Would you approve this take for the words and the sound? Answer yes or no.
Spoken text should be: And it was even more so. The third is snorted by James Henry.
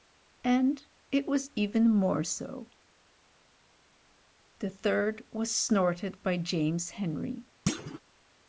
no